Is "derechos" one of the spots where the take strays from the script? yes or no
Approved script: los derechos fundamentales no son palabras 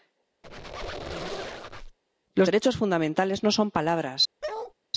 no